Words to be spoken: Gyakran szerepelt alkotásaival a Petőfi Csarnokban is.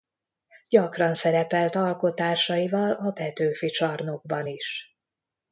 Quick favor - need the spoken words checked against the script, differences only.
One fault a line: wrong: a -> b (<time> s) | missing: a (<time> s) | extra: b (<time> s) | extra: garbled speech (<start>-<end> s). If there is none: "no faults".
no faults